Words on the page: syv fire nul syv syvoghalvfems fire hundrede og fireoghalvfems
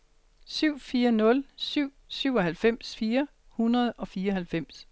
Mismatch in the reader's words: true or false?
false